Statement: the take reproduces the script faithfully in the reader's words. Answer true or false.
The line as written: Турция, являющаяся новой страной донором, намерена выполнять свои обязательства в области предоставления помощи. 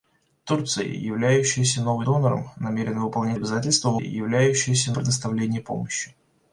false